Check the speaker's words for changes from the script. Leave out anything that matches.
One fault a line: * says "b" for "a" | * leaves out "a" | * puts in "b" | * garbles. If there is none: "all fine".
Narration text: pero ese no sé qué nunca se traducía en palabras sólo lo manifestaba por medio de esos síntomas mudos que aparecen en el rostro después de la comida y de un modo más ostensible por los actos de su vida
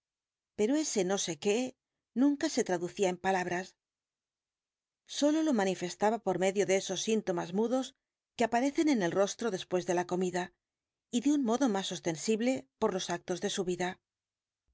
all fine